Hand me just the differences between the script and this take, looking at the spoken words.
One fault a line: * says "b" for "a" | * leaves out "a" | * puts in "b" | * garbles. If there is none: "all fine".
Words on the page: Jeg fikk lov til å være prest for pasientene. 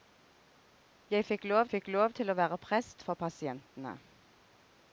* puts in "fikk lov"